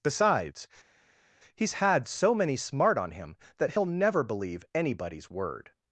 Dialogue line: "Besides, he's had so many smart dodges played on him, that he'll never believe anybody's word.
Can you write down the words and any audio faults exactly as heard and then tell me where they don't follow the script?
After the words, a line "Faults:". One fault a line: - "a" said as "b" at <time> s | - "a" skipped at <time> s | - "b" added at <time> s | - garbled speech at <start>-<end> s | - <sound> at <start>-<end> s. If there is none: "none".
"Besides, he's had so many smart on him, that he'll never believe anybody's word.
Faults:
- "dodges played" skipped at 3.0 s